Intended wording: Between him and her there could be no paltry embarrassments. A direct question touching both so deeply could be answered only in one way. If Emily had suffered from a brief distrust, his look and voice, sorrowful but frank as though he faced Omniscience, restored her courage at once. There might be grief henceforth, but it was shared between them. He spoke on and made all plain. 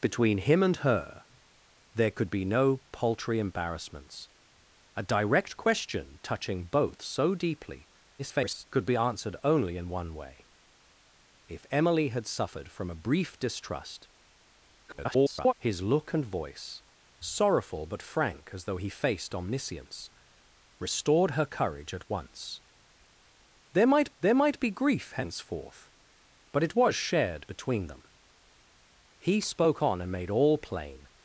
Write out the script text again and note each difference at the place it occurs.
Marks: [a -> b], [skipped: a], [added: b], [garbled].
Between him and her there could be no paltry embarrassments. A direct question touching both so deeply [garbled] could be answered only in one way. If Emily had suffered from a brief distrust, [garbled] his look and voice, sorrowful but frank as though he faced Omniscience, restored her courage at once. There might [added: there might] be grief henceforth, but it was shared between them. He spoke on and made all plain.